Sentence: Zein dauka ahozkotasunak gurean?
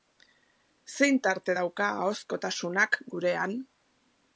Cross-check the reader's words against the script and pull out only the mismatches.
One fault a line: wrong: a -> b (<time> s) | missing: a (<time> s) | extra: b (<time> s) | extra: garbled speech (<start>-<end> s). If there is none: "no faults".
extra: tarte (1.3 s)